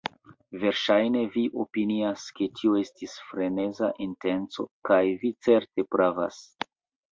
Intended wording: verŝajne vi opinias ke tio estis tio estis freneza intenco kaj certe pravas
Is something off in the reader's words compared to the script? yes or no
yes